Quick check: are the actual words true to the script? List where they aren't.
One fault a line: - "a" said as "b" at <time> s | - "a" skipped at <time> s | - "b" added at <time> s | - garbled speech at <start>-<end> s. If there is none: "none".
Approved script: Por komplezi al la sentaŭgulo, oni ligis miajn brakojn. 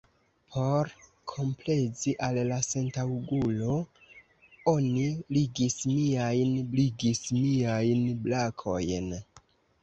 - "ligis miajn" added at 6.8 s